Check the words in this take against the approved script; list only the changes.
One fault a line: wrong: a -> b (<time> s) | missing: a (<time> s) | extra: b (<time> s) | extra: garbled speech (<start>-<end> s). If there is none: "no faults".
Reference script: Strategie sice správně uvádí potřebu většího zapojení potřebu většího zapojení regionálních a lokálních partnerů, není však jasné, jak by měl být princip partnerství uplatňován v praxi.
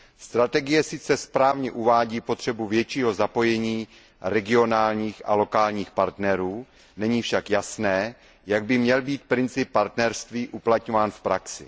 missing: potřebu většího zapojení (3.9 s)